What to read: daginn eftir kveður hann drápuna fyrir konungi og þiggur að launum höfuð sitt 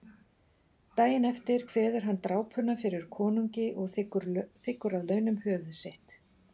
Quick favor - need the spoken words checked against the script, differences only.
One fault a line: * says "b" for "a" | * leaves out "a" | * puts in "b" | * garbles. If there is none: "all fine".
all fine